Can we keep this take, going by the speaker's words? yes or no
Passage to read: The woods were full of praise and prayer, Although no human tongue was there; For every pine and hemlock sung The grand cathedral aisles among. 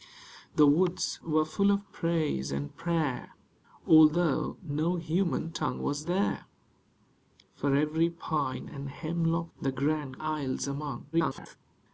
no